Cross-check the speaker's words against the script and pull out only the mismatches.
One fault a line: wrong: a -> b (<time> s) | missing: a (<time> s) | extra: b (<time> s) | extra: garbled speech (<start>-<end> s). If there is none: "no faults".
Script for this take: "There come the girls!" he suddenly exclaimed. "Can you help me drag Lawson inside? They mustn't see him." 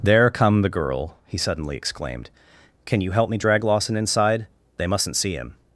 wrong: girls -> girl (0.7 s)